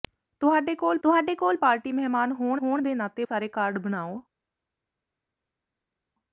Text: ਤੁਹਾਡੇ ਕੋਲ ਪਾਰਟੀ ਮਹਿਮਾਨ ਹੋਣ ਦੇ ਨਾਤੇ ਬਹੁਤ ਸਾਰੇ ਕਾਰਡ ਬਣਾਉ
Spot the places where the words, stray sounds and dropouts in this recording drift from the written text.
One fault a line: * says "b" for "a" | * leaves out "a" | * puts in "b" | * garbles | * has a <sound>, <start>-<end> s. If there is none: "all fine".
* puts in "ਤੁਹਾਡੇ ਕੋਲ"
* puts in "ਹੋਣ"
* leaves out "ਬਹੁਤ"